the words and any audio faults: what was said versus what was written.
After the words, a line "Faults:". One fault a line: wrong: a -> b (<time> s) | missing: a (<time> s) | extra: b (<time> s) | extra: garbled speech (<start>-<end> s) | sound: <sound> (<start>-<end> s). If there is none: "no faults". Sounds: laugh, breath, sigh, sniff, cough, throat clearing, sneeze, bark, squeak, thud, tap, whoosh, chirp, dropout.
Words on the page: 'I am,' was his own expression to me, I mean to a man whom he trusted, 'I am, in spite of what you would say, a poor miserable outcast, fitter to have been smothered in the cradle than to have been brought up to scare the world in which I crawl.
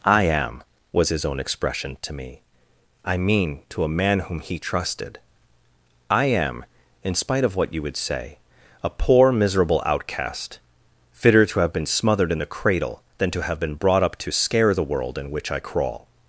'I am,' was his own expression to me, I mean to a man whom he trusted, 'I am, in spite of what you would say, a poor miserable outcast, fitter to have been smothered in the cradle than to have been brought up to scare the world in which I crawl.
Faults:
no faults